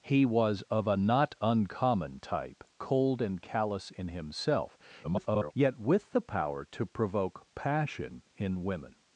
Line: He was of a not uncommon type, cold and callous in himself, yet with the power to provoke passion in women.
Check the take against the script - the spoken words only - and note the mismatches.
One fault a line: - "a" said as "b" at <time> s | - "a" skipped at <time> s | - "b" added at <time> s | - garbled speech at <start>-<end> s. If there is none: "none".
- garbled speech at 5.0-5.5 s